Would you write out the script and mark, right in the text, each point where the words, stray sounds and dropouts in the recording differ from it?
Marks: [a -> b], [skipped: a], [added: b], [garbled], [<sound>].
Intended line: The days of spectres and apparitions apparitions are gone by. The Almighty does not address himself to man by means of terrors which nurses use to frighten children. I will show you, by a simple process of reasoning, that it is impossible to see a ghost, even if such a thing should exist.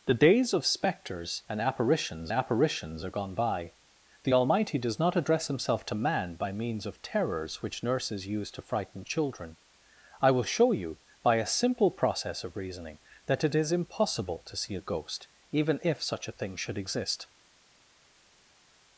The days of spectres and apparitions apparitions are gone by. The Almighty does not address himself to man by means of terrors which nurses use to frighten children. I will show you, by a simple process of reasoning, that it is impossible to see a ghost, even if such a thing should exist.